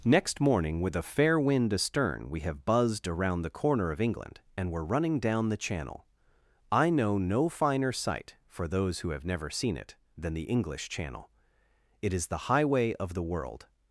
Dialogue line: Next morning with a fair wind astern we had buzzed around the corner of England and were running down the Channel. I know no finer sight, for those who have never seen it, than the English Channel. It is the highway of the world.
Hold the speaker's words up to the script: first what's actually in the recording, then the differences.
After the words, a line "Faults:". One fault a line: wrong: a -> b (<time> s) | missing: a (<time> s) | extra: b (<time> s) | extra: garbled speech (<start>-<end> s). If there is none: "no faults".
Next morning with a fair wind astern we have buzzed around the corner of England and were running down the Channel. I know no finer sight, for those who have never seen it, than the English Channel. It is the highway of the world.
Faults:
wrong: had -> have (2.4 s)